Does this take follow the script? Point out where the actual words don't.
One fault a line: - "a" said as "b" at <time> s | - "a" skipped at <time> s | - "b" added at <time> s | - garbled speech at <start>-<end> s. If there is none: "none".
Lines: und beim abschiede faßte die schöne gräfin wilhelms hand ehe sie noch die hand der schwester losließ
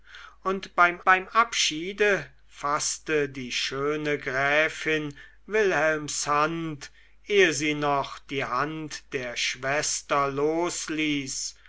- "beim" added at 1.0 s